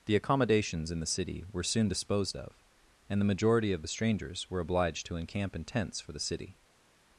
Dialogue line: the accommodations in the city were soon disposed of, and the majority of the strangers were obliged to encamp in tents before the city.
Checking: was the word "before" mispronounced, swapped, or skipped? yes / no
yes